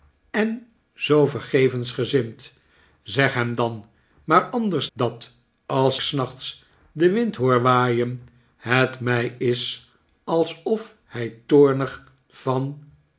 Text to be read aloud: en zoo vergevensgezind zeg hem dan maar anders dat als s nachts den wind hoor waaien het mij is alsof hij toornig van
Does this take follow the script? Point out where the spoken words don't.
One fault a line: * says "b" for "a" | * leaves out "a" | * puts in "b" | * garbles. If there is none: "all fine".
all fine